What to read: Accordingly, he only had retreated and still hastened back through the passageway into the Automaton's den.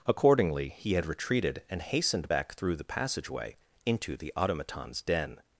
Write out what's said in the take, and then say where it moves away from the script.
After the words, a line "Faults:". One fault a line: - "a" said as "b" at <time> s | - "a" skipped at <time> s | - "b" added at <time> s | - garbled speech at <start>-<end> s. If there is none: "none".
Accordingly, he had retreated and hastened back through the passageway into the Automaton's den.
Faults:
- "only" skipped at 0.9 s
- "still" skipped at 1.8 s